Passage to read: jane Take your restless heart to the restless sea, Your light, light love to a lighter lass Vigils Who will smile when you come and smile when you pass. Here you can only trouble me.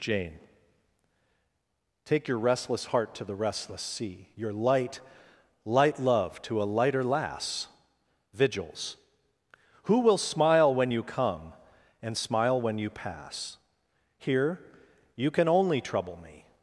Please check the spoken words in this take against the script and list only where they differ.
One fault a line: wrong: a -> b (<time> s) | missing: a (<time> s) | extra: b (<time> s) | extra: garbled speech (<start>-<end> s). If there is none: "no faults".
no faults